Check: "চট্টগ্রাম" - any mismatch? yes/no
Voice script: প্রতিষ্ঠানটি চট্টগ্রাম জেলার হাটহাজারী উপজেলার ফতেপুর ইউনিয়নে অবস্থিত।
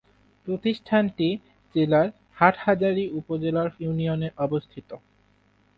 yes